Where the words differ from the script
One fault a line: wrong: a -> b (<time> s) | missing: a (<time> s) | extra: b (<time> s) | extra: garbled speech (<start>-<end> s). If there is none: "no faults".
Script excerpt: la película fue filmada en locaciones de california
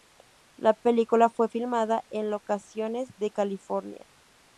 no faults